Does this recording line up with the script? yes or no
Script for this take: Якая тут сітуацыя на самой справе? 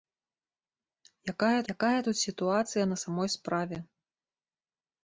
no